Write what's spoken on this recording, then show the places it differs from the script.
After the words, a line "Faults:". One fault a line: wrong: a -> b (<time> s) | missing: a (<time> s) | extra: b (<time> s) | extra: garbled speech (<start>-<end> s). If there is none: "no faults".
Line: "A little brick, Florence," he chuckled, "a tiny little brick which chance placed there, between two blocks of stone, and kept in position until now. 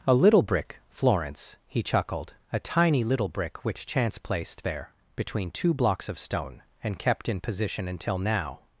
"A little brick, Florence," he chuckled, "a tiny little brick which chance placed there, between two blocks of stone, and kept in position until now.
Faults:
no faults